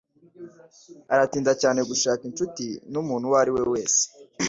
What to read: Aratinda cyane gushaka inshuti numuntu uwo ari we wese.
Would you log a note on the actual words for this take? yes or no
no